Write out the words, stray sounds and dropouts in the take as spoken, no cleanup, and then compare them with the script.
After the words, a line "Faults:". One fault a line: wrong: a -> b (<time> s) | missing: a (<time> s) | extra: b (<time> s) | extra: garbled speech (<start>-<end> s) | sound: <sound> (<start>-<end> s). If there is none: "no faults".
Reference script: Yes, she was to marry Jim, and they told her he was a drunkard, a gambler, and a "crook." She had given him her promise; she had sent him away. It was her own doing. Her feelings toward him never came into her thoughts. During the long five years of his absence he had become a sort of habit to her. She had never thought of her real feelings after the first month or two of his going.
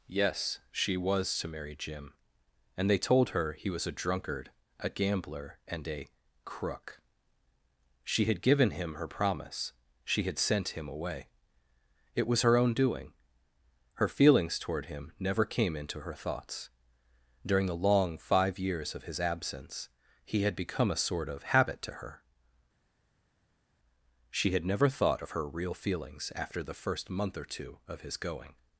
Yes, she was to marry Jim, and they told her he was a drunkard, a gambler, and a "crook." She had given him her promise; she had sent him away. It was her own doing. Her feelings toward him never came into her thoughts. During the long five years of his absence he had become a sort of habit to her. She had never thought of her real feelings after the first month or two of his going.
Faults:
no faults